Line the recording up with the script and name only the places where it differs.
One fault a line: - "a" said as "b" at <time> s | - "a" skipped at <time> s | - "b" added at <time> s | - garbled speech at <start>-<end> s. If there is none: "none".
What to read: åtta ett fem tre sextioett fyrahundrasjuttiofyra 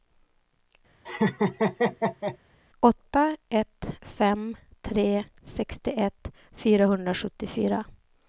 none